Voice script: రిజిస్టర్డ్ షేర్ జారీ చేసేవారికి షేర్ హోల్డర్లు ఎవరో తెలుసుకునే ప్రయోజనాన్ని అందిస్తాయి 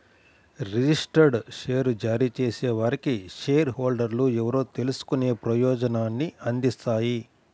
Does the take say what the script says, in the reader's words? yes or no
yes